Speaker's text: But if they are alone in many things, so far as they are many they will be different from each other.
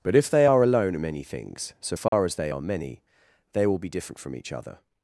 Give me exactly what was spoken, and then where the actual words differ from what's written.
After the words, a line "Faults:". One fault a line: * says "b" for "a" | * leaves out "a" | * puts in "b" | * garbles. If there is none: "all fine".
But if they are alone in many things, so far as they are many they will be different from each other.
Faults:
all fine